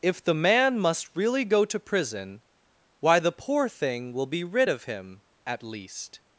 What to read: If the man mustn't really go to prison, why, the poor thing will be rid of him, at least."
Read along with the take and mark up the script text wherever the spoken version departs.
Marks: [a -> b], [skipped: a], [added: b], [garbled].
If the man [mustn't -> must] really go to prison, why, the poor thing will be rid of him, at least."